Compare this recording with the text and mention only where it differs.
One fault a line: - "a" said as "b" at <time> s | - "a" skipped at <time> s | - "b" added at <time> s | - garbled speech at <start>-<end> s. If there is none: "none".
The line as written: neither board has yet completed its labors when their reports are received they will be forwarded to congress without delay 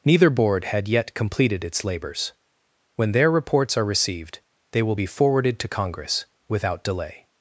- "has" said as "had" at 0.7 s